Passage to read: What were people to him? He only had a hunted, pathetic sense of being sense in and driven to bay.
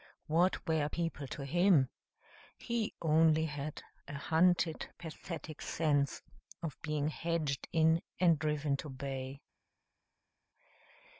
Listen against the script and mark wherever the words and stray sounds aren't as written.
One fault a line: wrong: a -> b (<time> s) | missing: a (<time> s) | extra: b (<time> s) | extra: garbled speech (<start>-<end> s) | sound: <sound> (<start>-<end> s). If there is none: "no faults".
wrong: sense -> hedged (7.1 s)